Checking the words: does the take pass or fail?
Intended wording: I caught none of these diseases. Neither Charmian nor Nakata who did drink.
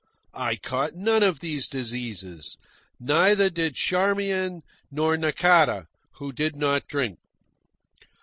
fail